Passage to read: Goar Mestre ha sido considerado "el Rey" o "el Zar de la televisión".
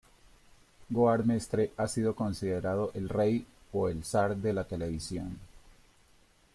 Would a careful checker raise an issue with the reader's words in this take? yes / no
no